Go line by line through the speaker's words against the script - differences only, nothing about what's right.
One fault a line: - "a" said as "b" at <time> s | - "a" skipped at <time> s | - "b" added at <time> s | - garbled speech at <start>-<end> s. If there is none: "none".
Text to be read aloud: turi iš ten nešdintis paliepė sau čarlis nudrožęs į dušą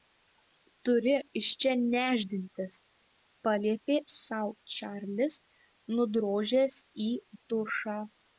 - "ten" said as "čia" at 1.6 s